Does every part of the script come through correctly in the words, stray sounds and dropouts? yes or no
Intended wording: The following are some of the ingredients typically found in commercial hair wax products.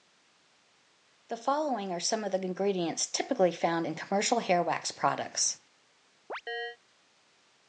no